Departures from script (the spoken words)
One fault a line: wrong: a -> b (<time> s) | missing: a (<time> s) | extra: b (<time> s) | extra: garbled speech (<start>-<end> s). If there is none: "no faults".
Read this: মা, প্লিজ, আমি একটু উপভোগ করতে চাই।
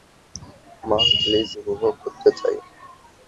missing: আমি একটু (1.5 s)